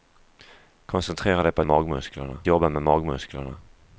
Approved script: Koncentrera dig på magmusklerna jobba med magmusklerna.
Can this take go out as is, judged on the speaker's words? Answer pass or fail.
pass